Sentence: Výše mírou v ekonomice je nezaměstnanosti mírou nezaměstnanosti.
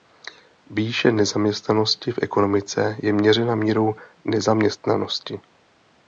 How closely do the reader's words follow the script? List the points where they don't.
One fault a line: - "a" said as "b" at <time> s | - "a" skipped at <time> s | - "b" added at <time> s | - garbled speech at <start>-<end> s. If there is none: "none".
- "mírou" said as "nezaměstnanosti" at 1.1 s
- "nezaměstnanosti" said as "měřena" at 3.1 s